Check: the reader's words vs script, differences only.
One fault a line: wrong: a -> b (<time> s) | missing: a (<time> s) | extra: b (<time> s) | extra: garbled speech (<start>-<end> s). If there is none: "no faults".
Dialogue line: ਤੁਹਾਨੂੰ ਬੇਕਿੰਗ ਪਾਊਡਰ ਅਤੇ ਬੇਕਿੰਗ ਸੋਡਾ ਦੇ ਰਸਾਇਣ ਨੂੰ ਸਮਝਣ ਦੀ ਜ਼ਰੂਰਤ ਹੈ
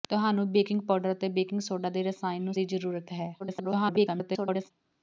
missing: ਸਮਝਣ (2.5 s)
extra: garbled speech (3.4-4.7 s)